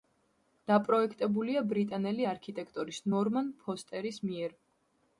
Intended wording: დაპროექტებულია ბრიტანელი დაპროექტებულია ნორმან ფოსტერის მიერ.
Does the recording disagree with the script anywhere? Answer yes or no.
yes